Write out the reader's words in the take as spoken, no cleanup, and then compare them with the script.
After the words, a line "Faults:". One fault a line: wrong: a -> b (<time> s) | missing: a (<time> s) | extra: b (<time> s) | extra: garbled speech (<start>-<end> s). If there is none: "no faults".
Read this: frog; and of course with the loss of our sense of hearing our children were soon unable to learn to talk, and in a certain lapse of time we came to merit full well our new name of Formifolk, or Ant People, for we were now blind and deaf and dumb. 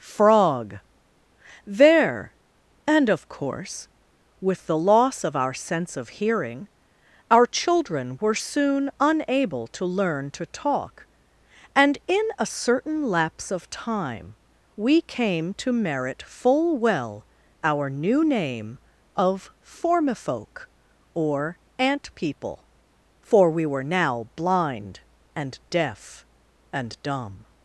frog; there and of course with the loss of our sense of hearing our children were soon unable to learn to talk, and in a certain lapse of time we came to merit full well our new name of Formifolk, or Ant People, for we were now blind and deaf and dumb.
Faults:
extra: there (1.6 s)